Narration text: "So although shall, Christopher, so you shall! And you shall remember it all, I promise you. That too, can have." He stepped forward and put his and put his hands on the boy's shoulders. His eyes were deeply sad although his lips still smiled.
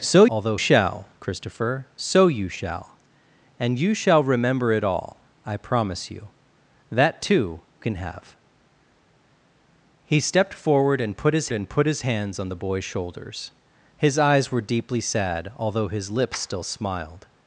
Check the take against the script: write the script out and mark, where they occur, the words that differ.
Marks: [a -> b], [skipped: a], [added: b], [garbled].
"So although shall, Christopher, so you shall! And you shall remember it all, I promise you. That too, can have." He stepped forward and put his and put his hands on the boy's shoulders. His eyes were deeply sad although his lips still smiled.